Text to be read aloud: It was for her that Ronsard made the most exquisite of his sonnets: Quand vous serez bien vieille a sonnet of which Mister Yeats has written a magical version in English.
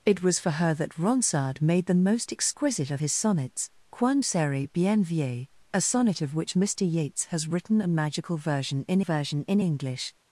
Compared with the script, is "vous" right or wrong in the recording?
wrong